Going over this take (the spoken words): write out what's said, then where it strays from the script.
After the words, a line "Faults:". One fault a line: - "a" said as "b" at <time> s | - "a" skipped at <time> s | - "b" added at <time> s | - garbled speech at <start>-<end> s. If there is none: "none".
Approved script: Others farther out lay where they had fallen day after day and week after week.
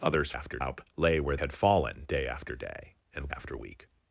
Others after out lay where had fallen day after day and after week.
Faults:
- "farther" said as "after" at 0.3 s
- "they" skipped at 1.4 s
- "week" skipped at 3.3 s